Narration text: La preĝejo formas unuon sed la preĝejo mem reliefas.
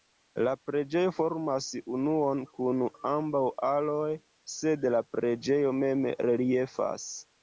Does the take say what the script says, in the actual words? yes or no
no